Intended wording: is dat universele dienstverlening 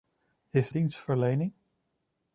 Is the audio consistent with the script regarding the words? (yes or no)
no